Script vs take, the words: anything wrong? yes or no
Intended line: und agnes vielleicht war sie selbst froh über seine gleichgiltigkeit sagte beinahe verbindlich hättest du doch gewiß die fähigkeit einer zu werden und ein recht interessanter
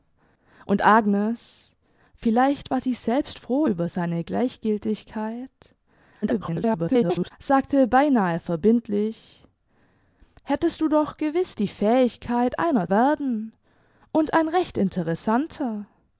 yes